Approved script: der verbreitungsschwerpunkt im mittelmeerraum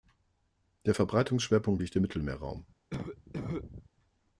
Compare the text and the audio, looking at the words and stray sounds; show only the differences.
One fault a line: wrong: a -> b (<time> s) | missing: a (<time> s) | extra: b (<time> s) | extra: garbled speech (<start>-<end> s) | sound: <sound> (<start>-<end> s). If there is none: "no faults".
extra: liegt (1.8 s)
sound: cough (2.9-3.9 s)